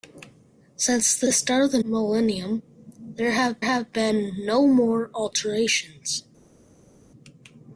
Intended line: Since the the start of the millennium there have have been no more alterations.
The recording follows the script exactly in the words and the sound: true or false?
true